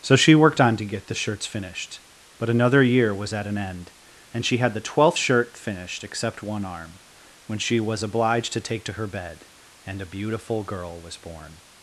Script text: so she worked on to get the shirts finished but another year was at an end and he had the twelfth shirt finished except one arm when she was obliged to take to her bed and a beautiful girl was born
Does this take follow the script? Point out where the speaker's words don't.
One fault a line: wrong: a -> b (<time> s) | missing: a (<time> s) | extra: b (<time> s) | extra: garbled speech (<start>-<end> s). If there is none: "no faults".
wrong: he -> she (4.5 s)